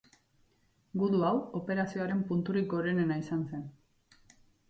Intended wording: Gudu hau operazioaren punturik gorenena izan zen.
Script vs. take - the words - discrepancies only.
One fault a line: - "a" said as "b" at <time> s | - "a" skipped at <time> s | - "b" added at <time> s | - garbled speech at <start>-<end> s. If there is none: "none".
none